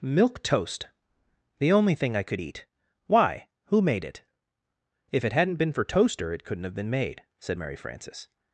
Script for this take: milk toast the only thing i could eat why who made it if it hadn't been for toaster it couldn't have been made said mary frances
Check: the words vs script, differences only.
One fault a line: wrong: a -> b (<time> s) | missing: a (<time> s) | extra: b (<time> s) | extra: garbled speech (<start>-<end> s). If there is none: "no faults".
no faults